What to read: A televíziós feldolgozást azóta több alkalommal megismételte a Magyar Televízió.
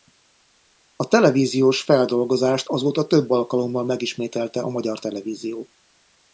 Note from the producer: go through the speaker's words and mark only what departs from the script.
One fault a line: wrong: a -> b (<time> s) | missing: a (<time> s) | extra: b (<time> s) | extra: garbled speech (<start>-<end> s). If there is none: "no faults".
no faults